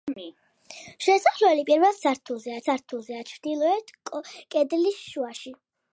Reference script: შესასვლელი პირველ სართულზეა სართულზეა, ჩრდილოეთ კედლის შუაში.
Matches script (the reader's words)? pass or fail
pass